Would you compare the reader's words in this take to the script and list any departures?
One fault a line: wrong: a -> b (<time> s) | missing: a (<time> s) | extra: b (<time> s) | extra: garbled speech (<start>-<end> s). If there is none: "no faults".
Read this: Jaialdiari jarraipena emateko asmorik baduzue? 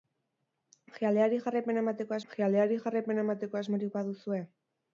extra: jaialdiari jarraipena emateko (2.3 s)